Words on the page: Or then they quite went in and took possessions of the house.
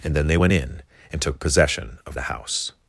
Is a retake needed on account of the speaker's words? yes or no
yes